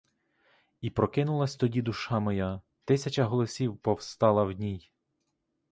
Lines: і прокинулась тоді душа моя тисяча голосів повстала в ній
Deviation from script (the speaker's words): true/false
false